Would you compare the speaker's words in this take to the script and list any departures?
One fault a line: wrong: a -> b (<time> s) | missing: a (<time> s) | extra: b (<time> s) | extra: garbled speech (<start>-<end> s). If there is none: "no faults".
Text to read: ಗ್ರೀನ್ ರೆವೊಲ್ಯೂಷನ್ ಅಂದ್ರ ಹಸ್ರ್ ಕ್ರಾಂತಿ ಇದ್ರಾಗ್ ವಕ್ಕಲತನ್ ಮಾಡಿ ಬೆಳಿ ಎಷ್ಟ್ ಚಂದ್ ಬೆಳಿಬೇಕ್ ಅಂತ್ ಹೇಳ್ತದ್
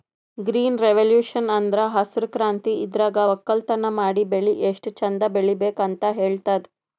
no faults